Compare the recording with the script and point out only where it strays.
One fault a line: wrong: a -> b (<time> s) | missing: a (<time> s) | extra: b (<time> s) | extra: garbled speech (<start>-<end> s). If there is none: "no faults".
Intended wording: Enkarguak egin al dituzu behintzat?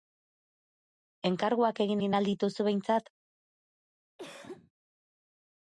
extra: egin (2.0 s)